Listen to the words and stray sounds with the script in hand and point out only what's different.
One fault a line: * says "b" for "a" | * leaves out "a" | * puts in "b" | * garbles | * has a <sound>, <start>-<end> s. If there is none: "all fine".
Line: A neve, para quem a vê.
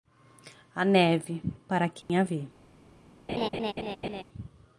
* has a dropout, 2.0-2.1 s
* has a laugh, 3.3-4.2 s